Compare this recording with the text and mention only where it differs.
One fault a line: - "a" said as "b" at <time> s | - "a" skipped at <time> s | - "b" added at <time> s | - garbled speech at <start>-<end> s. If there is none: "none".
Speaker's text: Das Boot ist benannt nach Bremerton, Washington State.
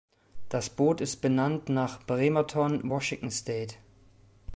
none